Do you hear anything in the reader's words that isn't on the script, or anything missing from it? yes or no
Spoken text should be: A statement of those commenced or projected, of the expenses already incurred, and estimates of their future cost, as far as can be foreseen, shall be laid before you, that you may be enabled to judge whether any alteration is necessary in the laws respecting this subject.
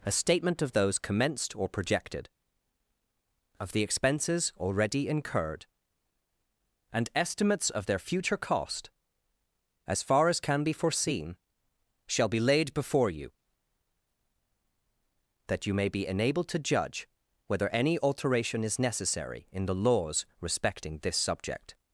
no